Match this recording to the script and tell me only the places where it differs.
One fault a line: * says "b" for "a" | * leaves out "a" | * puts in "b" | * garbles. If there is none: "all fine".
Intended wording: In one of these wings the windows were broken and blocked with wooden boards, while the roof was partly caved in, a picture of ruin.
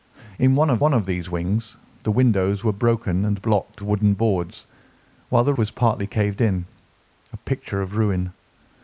* puts in "one of"
* leaves out "with"
* leaves out "roof"